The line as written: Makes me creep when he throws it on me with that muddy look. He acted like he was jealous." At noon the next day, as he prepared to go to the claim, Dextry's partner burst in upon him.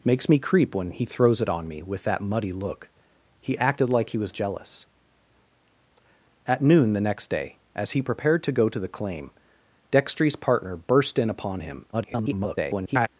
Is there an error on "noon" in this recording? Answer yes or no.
no